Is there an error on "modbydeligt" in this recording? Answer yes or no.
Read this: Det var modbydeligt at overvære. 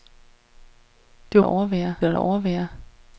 yes